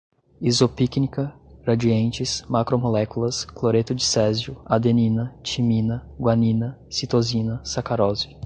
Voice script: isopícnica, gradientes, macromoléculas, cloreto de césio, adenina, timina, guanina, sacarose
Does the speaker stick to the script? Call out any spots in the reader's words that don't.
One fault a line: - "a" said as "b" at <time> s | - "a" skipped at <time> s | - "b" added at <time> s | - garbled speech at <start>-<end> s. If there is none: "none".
- "citosina" added at 6.9 s